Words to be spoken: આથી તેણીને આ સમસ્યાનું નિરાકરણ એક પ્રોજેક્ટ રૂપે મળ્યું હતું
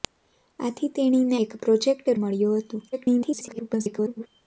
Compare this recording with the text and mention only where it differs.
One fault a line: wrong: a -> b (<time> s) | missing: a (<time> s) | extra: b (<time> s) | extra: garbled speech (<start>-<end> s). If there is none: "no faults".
missing: આ સમસ્યાનું નિરાકરણ (1.4 s)
missing: રૂપે (2.1 s)
extra: garbled speech (2.9-4.3 s)